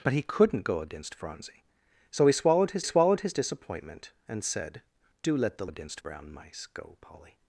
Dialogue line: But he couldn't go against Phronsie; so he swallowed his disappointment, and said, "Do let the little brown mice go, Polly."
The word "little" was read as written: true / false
false